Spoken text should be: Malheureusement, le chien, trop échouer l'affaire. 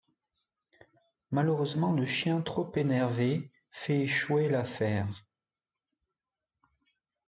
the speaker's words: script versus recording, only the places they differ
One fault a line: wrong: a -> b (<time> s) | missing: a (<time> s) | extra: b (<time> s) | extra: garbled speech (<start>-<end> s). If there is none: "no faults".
extra: énervé fait (2.8 s)